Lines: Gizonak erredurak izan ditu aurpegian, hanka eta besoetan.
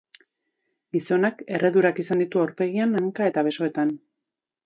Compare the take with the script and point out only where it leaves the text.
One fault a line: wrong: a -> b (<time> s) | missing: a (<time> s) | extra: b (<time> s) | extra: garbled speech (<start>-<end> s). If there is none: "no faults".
no faults